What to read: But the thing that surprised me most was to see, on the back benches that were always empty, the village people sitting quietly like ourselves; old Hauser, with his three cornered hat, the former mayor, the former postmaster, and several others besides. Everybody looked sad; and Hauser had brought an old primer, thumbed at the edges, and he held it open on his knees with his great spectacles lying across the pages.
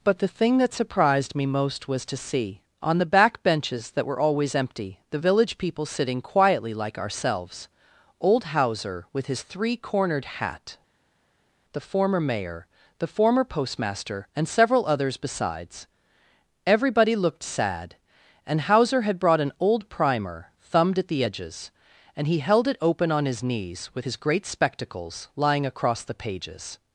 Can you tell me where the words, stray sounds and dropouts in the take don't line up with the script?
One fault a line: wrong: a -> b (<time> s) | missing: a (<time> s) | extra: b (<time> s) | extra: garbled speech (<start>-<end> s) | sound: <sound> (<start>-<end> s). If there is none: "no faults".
no faults